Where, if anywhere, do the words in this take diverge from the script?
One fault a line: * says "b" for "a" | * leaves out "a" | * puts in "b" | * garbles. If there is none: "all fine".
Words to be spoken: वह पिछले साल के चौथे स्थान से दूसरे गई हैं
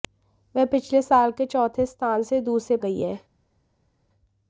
all fine